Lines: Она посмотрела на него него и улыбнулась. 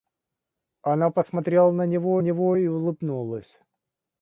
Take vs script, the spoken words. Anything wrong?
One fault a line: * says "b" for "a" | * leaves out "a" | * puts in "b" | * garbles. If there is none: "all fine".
all fine